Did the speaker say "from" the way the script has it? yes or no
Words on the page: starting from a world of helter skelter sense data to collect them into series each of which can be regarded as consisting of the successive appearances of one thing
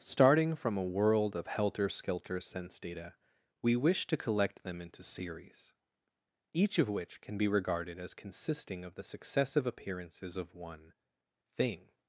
yes